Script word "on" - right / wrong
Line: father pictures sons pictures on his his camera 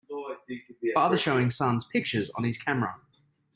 right